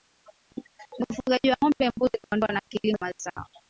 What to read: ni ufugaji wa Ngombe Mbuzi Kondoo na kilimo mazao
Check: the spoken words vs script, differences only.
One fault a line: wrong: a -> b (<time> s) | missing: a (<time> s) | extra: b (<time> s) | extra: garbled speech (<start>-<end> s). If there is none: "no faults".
no faults